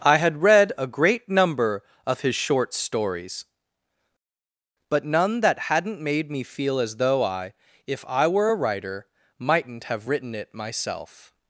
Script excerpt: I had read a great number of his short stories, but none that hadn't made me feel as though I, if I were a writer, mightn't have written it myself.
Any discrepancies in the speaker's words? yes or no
no